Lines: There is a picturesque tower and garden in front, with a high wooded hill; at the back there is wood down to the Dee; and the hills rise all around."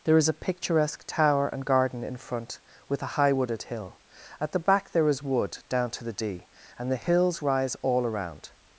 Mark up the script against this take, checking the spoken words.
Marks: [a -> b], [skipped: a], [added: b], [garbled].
There is a picturesque tower and garden in front, with a high wooded hill; at the back there is wood down to the Dee; and the hills rise all around."